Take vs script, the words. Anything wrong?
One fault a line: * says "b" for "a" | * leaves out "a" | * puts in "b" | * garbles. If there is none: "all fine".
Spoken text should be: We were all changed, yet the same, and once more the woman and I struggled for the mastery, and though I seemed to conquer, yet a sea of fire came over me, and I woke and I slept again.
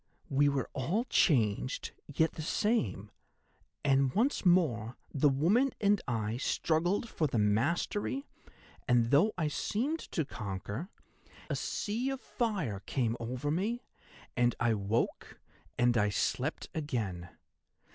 * leaves out "yet"